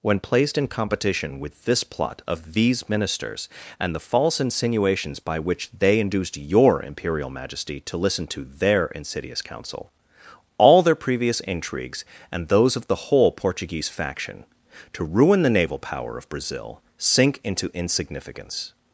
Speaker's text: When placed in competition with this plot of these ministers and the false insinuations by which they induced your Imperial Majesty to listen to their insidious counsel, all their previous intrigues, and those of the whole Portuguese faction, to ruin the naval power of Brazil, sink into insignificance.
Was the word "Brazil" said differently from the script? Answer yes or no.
no